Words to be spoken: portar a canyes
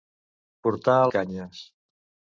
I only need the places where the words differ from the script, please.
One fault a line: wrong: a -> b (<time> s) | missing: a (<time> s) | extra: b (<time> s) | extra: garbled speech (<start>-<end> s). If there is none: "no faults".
no faults